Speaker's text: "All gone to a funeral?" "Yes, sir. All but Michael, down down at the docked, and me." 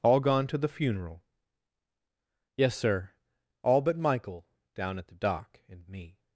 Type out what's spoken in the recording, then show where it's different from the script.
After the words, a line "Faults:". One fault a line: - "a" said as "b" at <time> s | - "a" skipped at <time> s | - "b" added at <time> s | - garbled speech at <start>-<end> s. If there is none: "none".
"All gone to the funeral?" "Yes, sir. All but Michael, down at the dock, and me."
Faults:
- "a" said as "the" at 0.6 s
- "down" skipped at 5.0 s
- "docked" said as "dock" at 5.2 s